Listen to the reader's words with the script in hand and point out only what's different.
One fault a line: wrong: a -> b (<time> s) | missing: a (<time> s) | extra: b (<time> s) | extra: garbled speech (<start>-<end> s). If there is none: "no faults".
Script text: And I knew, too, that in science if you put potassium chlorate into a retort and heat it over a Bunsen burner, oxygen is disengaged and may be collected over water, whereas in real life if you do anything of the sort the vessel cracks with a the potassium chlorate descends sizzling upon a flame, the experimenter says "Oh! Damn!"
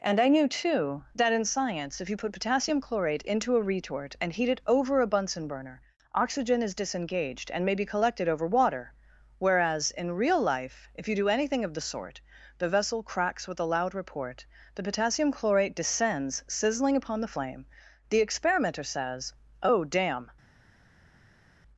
extra: loud report (13.7 s)
wrong: a -> the (17.2 s)